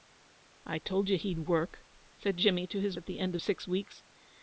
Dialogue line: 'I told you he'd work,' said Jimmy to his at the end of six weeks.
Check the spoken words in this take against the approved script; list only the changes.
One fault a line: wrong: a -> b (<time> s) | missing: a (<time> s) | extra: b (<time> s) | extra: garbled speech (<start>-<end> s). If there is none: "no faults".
no faults